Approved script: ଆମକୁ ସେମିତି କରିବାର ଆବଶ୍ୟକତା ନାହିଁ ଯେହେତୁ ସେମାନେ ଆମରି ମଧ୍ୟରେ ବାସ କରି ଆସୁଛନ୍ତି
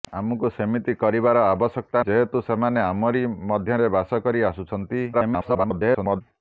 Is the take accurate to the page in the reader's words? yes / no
no